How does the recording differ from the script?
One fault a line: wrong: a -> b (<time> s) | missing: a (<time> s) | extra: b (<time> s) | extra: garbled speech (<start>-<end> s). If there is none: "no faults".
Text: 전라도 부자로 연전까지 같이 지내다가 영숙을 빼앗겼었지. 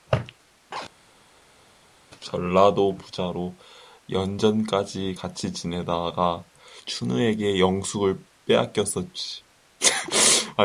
extra: 춘우에게 (6.9 s)